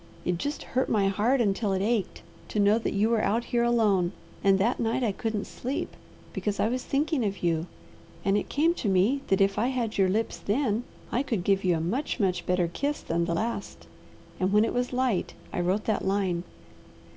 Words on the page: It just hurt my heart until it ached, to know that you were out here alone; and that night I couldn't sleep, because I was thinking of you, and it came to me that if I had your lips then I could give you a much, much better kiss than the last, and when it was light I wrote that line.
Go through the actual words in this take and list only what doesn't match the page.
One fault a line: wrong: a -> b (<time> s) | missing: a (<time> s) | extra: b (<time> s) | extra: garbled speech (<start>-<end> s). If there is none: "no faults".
no faults